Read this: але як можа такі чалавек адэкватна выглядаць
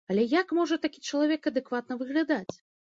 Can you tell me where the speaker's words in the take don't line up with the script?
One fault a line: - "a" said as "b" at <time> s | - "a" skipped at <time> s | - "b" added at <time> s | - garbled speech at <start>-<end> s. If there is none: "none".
none